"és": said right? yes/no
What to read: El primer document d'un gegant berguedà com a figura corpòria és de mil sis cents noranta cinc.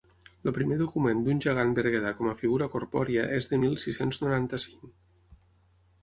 yes